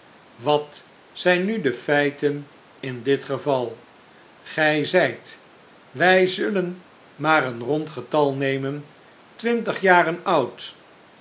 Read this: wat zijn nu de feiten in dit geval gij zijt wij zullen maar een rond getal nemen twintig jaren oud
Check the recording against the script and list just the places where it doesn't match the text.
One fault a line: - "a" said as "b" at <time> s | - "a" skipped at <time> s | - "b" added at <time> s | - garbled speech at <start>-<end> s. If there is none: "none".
none